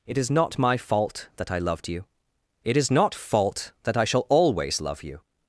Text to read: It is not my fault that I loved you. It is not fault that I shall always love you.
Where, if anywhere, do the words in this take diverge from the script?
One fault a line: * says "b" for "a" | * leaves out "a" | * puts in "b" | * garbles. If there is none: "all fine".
all fine